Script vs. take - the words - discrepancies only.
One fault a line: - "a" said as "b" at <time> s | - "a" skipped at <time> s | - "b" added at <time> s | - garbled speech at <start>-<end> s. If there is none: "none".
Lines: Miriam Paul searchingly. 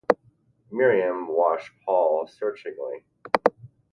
- "watched" added at 1.3 s